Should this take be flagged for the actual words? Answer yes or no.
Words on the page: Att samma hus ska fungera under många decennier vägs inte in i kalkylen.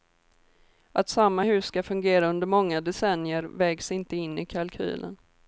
no